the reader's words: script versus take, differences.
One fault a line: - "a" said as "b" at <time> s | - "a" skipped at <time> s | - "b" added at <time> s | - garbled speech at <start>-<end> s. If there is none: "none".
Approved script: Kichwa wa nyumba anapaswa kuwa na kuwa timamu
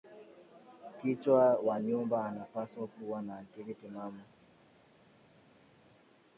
- "kuwa" said as "akili" at 3.4 s